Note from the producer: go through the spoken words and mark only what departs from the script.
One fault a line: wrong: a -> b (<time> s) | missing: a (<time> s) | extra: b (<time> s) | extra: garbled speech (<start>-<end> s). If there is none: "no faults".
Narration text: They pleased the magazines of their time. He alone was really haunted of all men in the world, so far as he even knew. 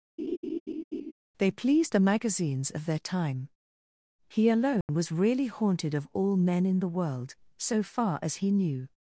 missing: even (8.5 s)